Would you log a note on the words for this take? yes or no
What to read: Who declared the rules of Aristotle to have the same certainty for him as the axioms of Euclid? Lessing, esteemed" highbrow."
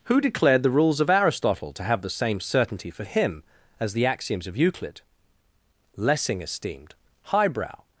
no